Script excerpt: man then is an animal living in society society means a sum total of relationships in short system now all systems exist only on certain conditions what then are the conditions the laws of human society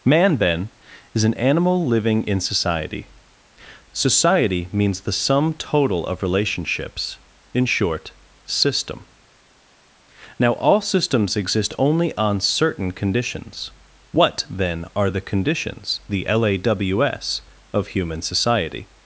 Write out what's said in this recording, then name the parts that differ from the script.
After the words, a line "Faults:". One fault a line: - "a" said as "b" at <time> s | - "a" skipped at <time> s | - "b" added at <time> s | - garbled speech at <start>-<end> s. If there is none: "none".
man then is an animal living in society society means the sum total of relationships in short system now all systems exist only on certain conditions what then are the conditions the laws of human society
Faults:
- "a" said as "the" at 5.0 s